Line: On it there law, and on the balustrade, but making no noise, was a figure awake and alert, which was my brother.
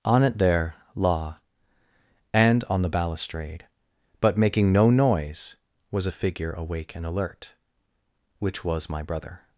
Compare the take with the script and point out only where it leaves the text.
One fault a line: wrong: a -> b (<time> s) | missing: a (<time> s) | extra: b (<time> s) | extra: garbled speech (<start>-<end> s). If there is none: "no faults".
no faults